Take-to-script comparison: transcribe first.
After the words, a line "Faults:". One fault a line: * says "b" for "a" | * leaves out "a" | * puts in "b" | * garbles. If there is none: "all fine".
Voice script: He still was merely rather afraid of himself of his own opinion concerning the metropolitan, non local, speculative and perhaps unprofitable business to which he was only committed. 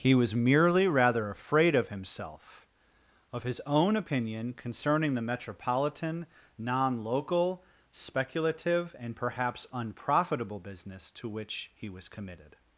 He was merely rather afraid of himself of his own opinion concerning the metropolitan, non local, speculative and perhaps unprofitable business to which he was committed.
Faults:
* leaves out "still"
* leaves out "only"